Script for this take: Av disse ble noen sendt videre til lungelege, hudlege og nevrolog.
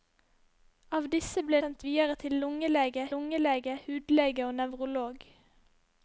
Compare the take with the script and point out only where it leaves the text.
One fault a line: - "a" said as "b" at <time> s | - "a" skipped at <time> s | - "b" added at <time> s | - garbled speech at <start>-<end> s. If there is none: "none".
- "noen" skipped at 1.6 s
- "lungelege" added at 3.1 s